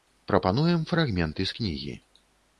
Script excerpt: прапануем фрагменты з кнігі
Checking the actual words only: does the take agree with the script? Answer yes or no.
yes